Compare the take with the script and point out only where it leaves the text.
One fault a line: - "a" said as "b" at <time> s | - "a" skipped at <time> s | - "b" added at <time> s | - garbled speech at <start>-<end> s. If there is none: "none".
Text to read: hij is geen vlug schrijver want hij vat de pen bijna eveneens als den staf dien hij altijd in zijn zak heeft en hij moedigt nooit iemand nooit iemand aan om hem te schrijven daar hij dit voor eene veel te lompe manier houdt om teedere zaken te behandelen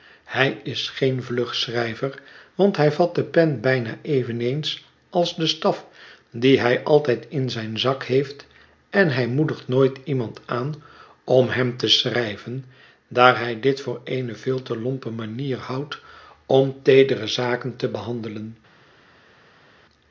- "nooit iemand" skipped at 10.4 s